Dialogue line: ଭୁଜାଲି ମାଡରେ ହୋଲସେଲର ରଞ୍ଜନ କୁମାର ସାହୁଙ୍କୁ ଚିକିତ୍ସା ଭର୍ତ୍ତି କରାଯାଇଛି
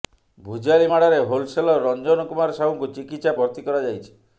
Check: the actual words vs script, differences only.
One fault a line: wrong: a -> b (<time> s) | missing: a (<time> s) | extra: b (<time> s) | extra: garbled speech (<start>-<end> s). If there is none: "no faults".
no faults